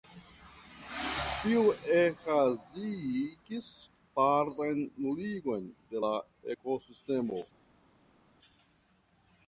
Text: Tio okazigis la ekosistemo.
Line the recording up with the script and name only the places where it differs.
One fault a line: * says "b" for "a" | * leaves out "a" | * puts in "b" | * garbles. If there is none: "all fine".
* puts in "partan nuligon de"